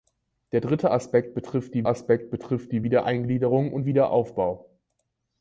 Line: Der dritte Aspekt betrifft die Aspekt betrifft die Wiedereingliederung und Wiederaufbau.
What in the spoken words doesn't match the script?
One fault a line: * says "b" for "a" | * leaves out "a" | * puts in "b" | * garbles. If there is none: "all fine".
all fine